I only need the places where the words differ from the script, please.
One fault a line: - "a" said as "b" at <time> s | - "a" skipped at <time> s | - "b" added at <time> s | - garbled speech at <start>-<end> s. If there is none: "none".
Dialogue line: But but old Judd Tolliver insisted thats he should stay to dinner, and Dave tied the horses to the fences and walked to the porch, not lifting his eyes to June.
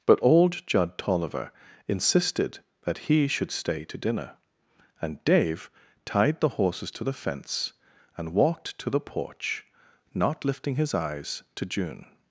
- "but" skipped at 0.2 s
- "thats" said as "that" at 2.8 s
- "fences" said as "fence" at 7.1 s